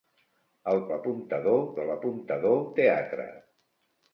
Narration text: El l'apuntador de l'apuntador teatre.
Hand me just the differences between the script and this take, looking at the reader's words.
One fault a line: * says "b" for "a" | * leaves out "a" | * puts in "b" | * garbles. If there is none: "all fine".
all fine